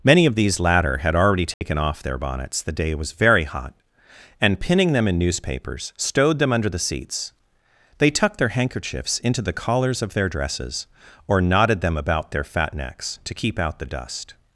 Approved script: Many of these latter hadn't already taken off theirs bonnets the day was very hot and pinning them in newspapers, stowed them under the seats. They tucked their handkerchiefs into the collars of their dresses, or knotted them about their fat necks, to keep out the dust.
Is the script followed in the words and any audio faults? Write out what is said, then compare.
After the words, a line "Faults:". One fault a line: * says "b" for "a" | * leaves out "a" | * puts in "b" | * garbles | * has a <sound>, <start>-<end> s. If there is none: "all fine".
Many of these latter had already taken off their bonnets the day was very hot and pinning them in newspapers, stowed them under the seats. They tucked their handkerchiefs into the collars of their dresses, or knotted them about their fat necks, to keep out the dust.
Faults:
* says "had" for "hadn't"
* has a dropout, 1.5-1.6 s
* says "their" for "theirs"